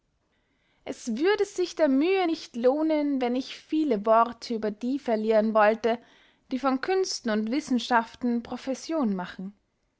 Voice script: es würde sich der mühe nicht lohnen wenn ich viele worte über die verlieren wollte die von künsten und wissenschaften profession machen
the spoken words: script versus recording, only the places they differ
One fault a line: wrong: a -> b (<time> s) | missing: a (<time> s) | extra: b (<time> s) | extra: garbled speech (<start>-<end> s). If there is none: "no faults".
no faults